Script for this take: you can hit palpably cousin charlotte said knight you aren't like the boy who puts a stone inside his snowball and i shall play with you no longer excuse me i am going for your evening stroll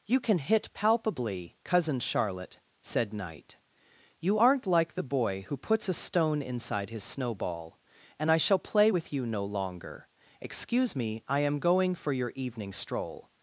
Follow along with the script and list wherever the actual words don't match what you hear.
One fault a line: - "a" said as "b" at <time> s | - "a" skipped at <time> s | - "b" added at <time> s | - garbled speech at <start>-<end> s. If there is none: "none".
none